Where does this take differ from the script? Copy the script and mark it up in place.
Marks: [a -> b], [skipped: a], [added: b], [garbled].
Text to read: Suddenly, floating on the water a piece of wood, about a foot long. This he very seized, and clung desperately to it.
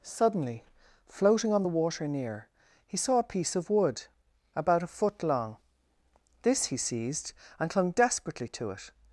Suddenly, floating on the water [added: near he saw] a piece of wood, about a foot long. This he [skipped: very] seized, and clung desperately to it.